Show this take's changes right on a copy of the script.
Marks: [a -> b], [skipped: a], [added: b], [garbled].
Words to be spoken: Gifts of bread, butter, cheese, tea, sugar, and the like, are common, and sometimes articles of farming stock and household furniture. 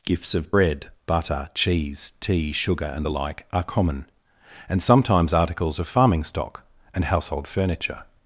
Gifts of bread, butter, cheese, tea, sugar, and the like, are common, and sometimes articles of farming stock and household furniture.